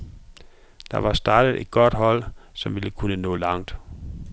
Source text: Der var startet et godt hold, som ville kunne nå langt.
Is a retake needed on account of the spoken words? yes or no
no